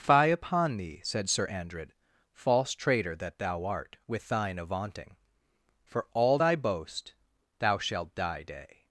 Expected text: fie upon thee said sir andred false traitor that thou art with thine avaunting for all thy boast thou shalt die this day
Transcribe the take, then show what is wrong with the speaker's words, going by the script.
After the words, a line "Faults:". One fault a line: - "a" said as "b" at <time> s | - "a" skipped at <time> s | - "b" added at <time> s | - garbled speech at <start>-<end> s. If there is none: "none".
fie upon thee said sir andred false traitor that thou art with thine avaunting for all thy boast thou shalt die day
Faults:
- "this" skipped at 8.4 s